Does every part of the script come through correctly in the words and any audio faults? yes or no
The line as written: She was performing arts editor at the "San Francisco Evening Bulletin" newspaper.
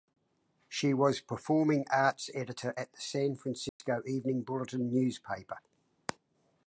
no